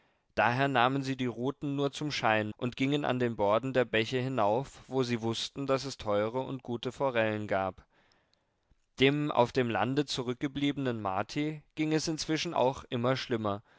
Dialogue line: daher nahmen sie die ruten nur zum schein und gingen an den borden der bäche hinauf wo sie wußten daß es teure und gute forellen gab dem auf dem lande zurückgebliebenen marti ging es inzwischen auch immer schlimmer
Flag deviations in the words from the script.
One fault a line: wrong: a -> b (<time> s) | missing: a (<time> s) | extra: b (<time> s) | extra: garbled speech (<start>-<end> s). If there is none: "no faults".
no faults